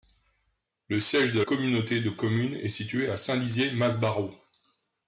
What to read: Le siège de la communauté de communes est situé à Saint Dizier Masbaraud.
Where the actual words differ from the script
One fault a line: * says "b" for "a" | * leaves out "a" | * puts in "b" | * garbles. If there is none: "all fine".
* leaves out "la"